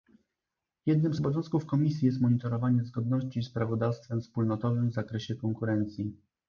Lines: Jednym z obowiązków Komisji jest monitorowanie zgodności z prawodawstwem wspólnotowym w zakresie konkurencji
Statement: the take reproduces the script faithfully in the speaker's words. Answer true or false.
true